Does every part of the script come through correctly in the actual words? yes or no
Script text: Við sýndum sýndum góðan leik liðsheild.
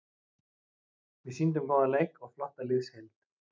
no